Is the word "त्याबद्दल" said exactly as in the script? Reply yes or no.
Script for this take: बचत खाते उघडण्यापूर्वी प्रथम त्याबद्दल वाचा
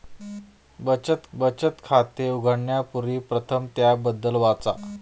yes